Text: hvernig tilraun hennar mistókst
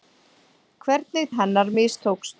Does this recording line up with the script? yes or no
no